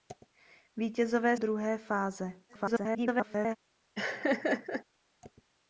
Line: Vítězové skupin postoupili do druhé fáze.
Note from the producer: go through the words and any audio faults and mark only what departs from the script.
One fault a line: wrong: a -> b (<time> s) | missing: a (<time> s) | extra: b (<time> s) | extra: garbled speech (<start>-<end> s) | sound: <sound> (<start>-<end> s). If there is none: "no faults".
missing: skupin postoupili do (1.4 s)
extra: garbled speech (2.5-3.6 s)
sound: laugh (3.9-4.8 s)